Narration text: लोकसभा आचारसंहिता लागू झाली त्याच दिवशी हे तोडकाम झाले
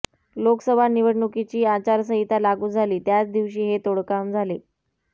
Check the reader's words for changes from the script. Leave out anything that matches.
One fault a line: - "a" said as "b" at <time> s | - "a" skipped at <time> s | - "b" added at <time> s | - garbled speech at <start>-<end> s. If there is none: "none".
- "निवडणुकीची" added at 0.9 s